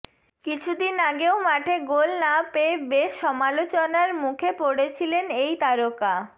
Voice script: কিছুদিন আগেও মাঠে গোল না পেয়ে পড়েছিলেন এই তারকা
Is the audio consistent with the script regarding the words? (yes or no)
no